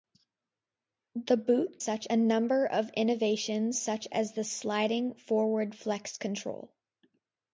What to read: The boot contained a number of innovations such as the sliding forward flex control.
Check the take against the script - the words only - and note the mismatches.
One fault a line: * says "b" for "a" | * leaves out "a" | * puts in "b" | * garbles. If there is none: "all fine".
* says "such" for "contained"